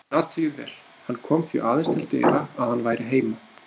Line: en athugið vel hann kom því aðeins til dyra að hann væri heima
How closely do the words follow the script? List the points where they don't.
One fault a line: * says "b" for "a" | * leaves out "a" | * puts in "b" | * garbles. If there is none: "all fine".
all fine